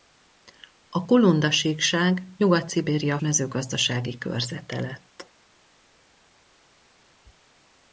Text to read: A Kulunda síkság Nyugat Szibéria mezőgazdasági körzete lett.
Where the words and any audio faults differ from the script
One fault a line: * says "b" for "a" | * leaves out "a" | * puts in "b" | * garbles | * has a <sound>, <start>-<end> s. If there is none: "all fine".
all fine